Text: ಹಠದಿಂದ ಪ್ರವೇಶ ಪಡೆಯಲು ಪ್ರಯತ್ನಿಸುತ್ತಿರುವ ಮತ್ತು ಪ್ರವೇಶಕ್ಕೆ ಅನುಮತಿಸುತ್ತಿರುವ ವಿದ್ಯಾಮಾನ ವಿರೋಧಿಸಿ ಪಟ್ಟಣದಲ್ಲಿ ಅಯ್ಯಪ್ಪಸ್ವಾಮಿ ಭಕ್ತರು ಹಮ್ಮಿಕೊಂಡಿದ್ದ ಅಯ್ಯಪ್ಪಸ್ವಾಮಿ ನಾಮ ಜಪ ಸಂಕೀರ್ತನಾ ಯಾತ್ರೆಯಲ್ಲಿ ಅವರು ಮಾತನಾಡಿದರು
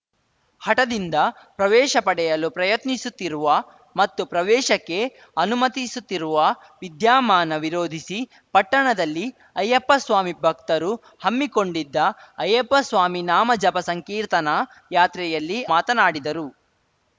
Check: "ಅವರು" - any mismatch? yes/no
yes